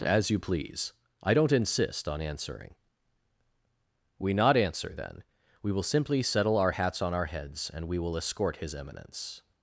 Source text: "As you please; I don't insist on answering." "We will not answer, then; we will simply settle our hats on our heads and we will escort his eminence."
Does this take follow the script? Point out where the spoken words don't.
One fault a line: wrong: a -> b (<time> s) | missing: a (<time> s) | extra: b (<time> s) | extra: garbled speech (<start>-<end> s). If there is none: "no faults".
missing: will (4.3 s)